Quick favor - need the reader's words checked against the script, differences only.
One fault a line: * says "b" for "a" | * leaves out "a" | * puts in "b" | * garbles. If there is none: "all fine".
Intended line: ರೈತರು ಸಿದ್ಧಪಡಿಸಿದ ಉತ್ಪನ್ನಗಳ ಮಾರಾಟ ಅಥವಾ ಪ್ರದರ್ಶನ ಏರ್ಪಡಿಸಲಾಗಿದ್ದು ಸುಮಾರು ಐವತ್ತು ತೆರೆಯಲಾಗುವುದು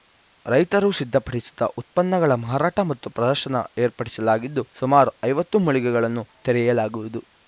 * says "ಮತ್ತು" for "ಅಥವಾ"
* puts in "ಮಳಿಗೆಗಳನ್ನು"